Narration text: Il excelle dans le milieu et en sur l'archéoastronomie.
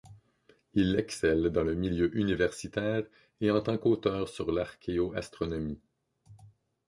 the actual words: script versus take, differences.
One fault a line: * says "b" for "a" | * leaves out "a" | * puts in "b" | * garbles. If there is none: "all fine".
* puts in "universitaire"
* puts in "tant qu'auteur"